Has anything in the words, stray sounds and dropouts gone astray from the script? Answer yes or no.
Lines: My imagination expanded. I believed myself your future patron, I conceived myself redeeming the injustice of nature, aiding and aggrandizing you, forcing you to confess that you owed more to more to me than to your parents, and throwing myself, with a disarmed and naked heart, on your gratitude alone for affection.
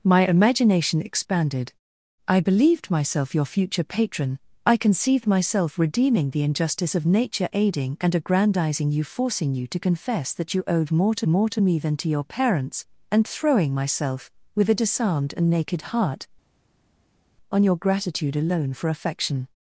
no